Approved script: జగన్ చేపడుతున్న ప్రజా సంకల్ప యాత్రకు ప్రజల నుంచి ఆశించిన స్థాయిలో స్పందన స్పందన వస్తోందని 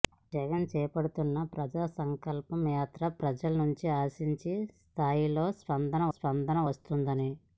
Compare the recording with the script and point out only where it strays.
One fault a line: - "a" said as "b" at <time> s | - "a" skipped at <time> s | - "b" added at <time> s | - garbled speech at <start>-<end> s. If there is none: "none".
none